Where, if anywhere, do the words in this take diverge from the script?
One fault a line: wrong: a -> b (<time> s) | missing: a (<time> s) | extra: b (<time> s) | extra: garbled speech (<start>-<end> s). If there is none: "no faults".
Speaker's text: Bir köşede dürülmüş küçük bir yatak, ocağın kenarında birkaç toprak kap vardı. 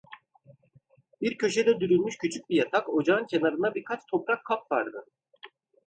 no faults